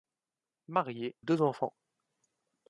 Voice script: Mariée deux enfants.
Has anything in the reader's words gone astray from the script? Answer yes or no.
no